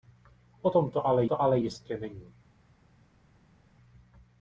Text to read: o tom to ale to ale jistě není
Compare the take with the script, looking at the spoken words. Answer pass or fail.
pass